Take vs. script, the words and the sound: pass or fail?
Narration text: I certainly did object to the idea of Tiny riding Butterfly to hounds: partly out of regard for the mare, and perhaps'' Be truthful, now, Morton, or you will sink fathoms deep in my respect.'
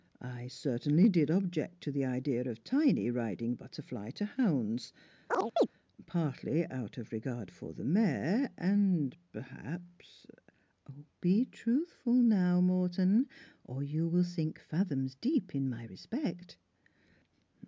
fail